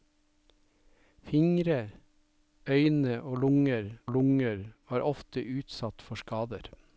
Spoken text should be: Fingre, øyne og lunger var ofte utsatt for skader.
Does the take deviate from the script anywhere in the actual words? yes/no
yes